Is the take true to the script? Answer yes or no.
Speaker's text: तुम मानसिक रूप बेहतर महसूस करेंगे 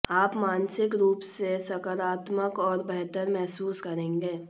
no